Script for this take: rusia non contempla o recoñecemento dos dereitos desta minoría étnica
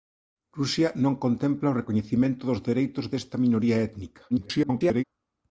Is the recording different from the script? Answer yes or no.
yes